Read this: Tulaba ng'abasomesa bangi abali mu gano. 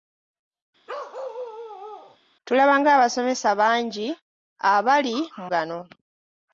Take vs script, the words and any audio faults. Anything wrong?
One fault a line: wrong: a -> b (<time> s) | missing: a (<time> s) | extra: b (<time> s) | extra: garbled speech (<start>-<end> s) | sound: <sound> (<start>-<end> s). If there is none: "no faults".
sound: bark (0.9-2.2 s)